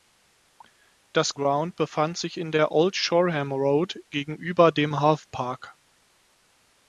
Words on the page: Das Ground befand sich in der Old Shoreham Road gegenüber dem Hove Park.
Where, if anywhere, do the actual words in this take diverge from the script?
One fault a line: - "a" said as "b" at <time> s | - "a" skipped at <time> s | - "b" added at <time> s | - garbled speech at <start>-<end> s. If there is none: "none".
none